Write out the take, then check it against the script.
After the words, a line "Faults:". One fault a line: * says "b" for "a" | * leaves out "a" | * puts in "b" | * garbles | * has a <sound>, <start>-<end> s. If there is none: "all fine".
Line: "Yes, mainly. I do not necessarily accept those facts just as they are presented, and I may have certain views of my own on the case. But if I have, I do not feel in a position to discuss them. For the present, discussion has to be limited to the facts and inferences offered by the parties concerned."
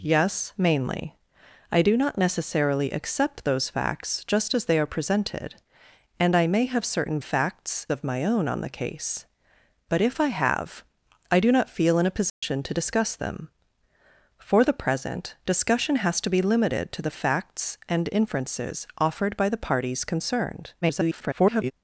"Yes, mainly. I do not necessarily accept those facts just as they are presented, and I may have certain facts of my own on the case. But if I have, I do not feel in a position to discuss them. For the present, discussion has to be limited to the facts and inferences offered by the parties concerned." [garbled]
Faults:
* says "facts" for "views"
* has a dropout, 12.3-12.4 s
* garbles